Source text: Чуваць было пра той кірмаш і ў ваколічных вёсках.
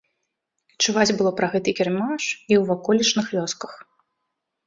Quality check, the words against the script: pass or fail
fail